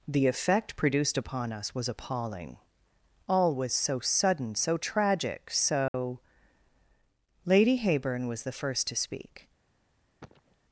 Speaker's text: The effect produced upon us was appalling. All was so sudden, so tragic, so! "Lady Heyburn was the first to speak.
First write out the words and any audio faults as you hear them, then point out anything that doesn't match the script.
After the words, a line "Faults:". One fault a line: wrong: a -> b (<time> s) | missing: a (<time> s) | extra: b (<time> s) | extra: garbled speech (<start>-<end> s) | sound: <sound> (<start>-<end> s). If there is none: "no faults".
The effect produced upon us was appalling. All was so sudden, so tragic, so! "Lady Heyburn was the first to speak.
Faults:
sound: dropout (5.9-5.9 s)
sound: cough (10.2-10.6 s)